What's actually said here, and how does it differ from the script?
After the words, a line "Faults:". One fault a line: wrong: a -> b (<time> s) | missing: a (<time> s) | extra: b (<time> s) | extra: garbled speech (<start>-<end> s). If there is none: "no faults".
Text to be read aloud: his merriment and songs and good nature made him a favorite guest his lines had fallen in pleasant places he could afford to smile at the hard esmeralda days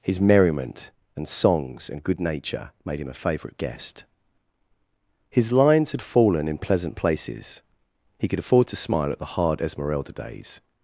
his merriment and songs and good nature made him a favorite guest his lines had fallen in pleasant places he could afford to smile at the hard esmeralda days
Faults:
no faults